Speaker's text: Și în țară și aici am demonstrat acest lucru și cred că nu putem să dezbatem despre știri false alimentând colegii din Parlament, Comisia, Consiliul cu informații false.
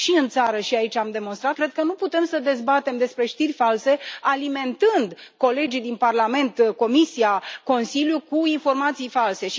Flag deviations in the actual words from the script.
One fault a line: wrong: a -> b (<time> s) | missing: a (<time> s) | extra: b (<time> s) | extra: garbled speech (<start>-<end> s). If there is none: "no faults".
missing: acest lucru și (1.6 s)